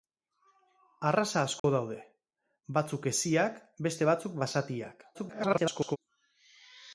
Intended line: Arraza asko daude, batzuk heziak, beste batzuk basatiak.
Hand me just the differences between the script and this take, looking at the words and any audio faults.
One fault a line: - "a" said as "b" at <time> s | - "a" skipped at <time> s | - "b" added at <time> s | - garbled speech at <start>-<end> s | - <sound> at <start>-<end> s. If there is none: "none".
- dropout at 1.6-1.6 s
- garbled speech at 5.1-6.0 s